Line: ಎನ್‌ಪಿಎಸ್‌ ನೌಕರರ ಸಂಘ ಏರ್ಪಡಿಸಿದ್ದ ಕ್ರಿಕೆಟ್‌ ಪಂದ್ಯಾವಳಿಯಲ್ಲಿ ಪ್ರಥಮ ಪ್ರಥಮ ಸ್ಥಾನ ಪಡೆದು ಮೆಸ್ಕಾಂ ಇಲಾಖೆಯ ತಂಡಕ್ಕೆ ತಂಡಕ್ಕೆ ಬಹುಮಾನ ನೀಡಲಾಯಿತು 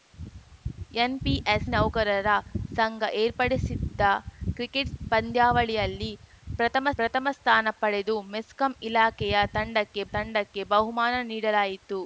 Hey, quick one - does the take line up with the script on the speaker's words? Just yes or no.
yes